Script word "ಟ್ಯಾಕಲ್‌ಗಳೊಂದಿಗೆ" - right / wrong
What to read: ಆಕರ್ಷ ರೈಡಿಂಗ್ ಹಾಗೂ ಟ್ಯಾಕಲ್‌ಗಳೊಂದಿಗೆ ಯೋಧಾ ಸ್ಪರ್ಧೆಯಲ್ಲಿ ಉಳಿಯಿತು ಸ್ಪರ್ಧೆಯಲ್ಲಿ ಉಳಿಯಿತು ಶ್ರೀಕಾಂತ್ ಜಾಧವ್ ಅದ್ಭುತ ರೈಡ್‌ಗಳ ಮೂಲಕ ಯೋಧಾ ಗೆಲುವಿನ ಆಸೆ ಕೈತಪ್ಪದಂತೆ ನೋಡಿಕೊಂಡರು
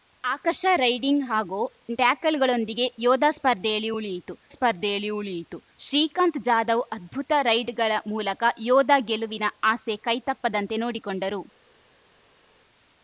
right